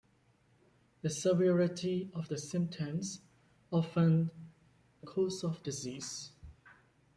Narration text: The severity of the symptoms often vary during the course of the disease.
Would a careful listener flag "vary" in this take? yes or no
yes